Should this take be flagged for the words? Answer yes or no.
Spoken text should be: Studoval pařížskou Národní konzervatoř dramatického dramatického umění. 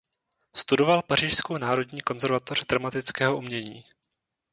yes